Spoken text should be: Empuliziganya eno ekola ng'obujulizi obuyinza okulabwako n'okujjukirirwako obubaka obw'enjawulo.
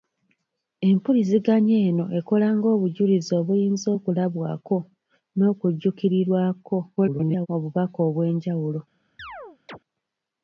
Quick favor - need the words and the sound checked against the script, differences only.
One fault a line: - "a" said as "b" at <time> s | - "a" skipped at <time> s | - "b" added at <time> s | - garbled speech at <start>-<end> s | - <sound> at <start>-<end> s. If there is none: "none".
- garbled speech at 7.0-7.5 s
- chirp at 9.2-9.8 s